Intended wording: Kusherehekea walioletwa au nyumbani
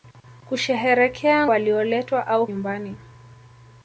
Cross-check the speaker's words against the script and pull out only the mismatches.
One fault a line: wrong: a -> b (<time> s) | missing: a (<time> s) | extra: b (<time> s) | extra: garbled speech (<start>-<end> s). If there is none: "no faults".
no faults